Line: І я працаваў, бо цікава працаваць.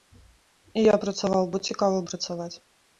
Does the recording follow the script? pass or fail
pass